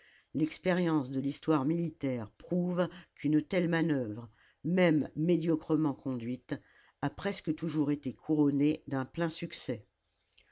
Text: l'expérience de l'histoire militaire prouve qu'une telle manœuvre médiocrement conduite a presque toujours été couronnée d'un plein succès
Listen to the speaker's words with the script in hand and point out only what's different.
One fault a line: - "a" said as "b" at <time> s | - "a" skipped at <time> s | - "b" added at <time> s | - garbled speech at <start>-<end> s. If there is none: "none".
- "même" added at 4.6 s